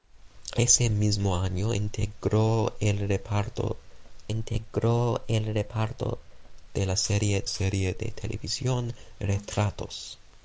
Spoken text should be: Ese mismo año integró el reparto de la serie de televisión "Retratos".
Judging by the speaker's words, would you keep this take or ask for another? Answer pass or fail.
fail